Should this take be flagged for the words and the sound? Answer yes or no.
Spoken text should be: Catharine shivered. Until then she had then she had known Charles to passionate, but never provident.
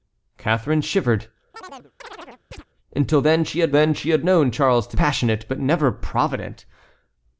yes